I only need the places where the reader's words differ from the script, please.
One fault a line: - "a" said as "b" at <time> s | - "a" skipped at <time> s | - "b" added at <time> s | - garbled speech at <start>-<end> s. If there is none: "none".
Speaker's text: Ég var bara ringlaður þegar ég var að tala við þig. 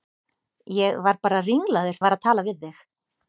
- "þegar" skipped at 2.0 s